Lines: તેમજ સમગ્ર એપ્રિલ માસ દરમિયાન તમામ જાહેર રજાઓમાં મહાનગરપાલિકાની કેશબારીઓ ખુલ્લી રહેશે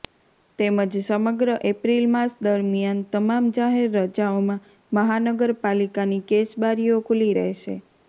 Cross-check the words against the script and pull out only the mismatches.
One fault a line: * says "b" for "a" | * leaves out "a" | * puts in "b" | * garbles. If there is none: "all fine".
all fine